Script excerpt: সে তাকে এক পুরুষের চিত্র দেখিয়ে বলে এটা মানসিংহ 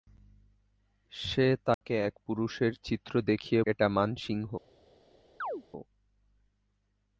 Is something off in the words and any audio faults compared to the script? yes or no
yes